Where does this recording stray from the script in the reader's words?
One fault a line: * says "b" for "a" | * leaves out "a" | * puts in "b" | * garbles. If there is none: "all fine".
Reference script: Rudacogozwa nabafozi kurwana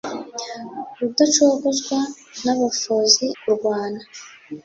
all fine